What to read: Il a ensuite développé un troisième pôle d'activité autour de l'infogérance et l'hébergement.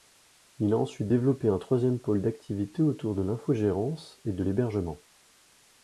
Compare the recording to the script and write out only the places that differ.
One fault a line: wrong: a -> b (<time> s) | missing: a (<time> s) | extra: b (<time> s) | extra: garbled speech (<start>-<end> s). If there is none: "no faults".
extra: de (4.3 s)